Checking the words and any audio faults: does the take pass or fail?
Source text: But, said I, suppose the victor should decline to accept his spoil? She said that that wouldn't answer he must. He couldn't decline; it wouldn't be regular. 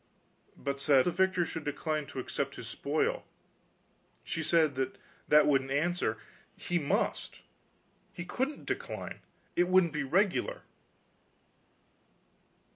fail